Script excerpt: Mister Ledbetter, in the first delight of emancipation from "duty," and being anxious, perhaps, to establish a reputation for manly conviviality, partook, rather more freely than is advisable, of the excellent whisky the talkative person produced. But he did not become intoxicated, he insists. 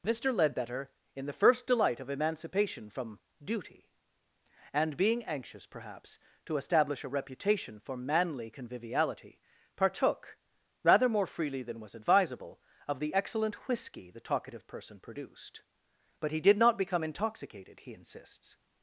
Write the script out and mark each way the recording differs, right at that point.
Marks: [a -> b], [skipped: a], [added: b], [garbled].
Mister Ledbetter, in the first delight of emancipation from "duty," and being anxious, perhaps, to establish a reputation for manly conviviality, partook, rather more freely than [is -> was] advisable, of the excellent whisky the talkative person produced. But he did not become intoxicated, he insists.